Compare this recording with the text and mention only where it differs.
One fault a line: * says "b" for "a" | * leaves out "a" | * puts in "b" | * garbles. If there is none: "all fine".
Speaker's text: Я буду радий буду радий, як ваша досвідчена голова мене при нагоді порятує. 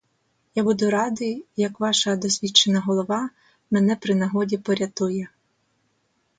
* leaves out "буду радий"